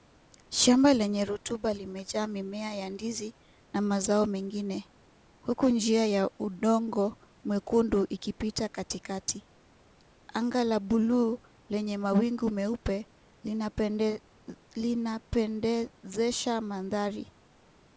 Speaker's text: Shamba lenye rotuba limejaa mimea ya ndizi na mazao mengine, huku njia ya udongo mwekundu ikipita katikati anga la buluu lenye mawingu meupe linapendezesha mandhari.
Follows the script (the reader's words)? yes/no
yes